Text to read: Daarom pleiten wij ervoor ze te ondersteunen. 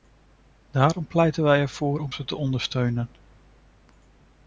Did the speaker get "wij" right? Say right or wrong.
right